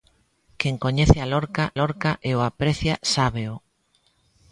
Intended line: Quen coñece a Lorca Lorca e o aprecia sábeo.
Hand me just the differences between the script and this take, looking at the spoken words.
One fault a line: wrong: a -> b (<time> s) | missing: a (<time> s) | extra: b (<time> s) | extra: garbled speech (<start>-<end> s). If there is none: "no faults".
no faults